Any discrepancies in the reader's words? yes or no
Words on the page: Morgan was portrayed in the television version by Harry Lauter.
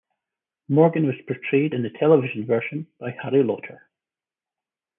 no